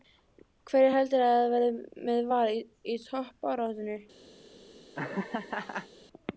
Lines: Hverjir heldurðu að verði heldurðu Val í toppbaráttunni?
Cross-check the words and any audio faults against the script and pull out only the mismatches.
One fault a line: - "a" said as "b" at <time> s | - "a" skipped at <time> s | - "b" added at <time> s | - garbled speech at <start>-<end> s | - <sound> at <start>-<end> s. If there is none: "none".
- "heldurðu" said as "með" at 2.1 s
- laugh at 4.9-5.9 s